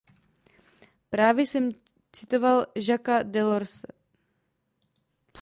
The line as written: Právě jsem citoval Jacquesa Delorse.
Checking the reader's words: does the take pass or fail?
pass